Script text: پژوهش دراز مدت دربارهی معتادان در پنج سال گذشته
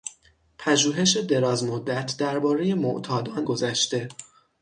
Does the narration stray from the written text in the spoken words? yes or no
yes